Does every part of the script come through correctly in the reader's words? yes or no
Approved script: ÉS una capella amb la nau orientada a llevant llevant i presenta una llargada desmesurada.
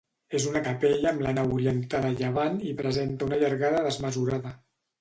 no